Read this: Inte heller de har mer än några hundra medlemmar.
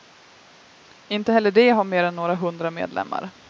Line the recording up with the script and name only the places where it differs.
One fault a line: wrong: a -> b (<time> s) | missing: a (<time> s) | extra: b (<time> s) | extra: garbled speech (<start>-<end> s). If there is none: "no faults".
no faults